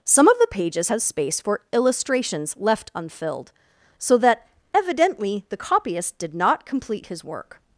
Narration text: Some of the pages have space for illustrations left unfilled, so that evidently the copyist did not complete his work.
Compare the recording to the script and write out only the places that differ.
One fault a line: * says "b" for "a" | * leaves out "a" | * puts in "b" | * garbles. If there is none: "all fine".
all fine